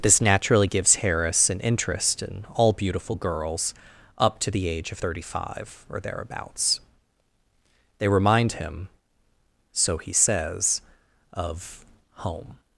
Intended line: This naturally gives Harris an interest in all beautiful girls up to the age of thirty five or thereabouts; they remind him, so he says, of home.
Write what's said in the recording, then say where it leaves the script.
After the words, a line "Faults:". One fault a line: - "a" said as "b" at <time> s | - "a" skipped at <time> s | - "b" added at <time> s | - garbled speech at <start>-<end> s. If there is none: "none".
This naturally gives Harris an interest in all beautiful girls up to the age of thirty five or thereabouts; they remind him, so he says, of home.
Faults:
none